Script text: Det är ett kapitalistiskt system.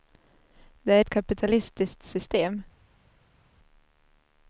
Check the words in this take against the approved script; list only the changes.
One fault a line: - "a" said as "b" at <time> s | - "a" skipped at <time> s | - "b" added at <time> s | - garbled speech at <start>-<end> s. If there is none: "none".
none